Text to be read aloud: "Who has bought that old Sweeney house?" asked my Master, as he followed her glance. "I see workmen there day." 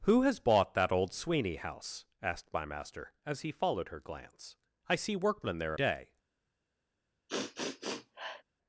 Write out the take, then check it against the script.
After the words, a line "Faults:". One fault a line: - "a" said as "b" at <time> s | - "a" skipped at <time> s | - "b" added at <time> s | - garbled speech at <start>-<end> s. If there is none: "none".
"Who has bought that old Sweeney house?" asked my Master, as he followed her glance. "I see workmen there day."
Faults:
none